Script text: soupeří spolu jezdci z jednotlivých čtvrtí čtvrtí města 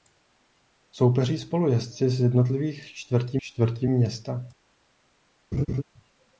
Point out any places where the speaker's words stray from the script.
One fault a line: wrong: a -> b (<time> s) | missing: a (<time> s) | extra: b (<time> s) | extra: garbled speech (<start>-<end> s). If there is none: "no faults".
no faults